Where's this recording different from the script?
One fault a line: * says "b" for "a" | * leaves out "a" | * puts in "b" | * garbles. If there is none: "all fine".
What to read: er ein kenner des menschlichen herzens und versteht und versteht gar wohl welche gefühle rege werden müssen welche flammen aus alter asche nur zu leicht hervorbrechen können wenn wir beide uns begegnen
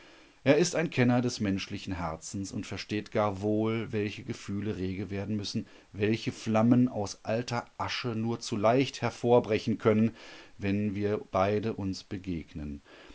* puts in "ist"
* leaves out "und versteht"